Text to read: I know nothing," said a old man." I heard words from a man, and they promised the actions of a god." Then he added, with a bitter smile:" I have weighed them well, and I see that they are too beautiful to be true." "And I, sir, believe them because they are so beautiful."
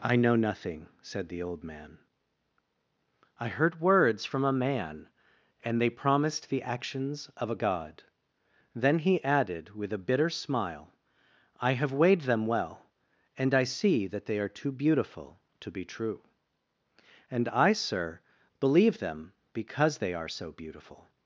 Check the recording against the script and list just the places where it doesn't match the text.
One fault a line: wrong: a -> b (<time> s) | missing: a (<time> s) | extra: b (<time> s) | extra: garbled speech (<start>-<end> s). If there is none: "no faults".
wrong: a -> the (1.3 s)